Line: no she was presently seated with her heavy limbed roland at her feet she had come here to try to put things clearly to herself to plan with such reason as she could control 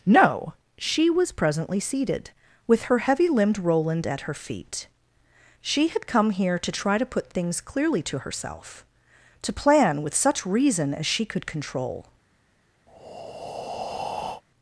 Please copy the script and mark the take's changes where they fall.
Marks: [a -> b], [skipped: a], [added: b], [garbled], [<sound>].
no she was presently seated with her heavy limbed roland at her feet she had come here to try to put things clearly to herself to plan with such reason as she could control [breath]